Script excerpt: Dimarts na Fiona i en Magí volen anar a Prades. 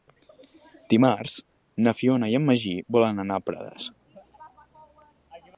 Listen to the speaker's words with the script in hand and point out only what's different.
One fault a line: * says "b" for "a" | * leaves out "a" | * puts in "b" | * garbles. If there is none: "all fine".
all fine